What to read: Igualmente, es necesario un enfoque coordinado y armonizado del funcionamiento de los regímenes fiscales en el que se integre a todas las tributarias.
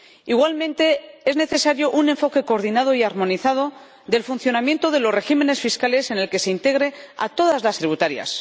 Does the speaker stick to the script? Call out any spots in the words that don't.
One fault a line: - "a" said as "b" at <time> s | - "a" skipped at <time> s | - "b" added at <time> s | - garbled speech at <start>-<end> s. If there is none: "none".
none